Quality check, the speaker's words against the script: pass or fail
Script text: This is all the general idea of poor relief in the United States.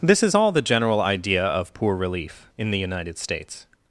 pass